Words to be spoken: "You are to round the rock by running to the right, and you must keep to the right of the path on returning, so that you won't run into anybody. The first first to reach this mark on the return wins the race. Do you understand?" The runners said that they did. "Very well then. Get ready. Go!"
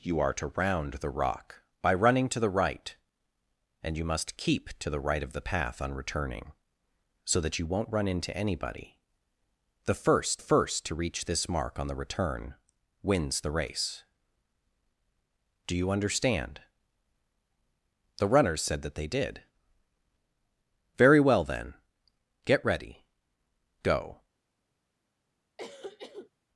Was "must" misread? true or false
false